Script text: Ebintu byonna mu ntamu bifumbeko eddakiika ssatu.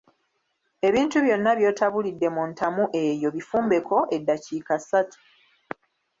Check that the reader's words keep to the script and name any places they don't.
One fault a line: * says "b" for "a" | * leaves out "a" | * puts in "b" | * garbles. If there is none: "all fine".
* puts in "by'otabulidde"
* puts in "eyo"